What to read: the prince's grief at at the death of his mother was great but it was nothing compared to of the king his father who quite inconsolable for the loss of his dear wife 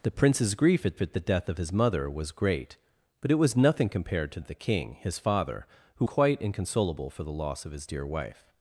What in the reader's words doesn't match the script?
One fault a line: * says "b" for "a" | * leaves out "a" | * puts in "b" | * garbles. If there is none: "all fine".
all fine